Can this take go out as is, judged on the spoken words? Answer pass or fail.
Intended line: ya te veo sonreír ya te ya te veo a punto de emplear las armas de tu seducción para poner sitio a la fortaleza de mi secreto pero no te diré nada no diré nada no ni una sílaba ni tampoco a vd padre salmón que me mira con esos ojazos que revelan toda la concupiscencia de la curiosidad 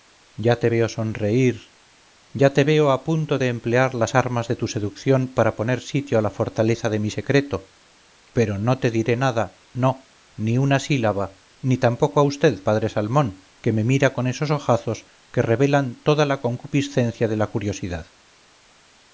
fail